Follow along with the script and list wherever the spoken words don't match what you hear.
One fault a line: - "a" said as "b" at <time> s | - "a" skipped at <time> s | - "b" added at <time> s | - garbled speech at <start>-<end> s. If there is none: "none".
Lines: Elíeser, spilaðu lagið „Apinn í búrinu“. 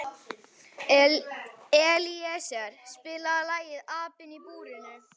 none